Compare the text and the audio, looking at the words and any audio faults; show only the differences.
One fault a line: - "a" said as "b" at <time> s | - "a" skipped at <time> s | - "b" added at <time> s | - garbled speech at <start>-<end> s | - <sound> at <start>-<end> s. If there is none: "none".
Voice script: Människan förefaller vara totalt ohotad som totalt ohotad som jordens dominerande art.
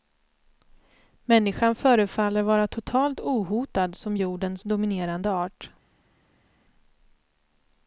- "totalt ohotad som" skipped at 4.2 s